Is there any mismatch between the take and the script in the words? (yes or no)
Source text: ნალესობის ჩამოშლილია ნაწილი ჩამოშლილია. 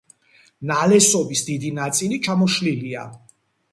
yes